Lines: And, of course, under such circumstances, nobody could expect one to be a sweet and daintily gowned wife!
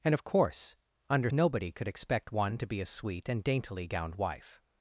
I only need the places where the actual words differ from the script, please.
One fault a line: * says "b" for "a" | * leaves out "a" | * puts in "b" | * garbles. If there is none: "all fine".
* leaves out "such circumstances"